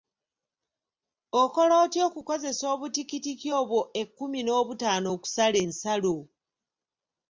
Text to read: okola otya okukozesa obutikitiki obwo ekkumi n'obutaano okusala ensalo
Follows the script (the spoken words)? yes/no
yes